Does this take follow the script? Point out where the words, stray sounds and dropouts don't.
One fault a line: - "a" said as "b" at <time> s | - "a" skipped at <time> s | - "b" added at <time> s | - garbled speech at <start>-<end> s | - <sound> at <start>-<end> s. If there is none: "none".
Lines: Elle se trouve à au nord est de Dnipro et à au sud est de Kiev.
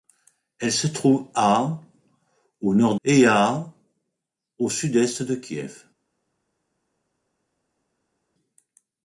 - "est de Dnipro" skipped at 3.0 s